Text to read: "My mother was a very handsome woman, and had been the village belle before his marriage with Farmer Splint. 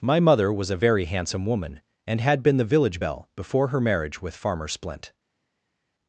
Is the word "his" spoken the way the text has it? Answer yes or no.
no